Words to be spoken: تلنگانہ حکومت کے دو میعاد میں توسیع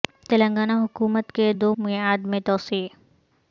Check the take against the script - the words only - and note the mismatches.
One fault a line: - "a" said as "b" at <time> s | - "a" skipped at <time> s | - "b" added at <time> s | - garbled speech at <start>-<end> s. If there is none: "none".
none